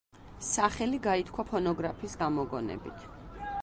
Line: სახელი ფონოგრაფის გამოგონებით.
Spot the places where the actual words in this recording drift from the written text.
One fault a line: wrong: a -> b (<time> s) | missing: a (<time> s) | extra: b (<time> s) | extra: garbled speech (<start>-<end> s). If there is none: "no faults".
extra: გაითქვა (1.1 s)